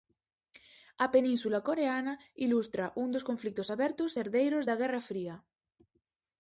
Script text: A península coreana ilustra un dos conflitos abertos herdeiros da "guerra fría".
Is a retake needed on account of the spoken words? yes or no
no